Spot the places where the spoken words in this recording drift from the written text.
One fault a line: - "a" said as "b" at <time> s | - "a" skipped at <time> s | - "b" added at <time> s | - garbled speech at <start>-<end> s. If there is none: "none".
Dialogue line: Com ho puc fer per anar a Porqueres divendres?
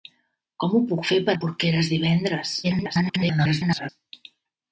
- "anar" skipped at 1.4 s
- garbled speech at 2.6-3.9 s